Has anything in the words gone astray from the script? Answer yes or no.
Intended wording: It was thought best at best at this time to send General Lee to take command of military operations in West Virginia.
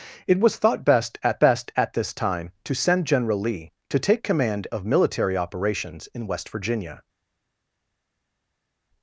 no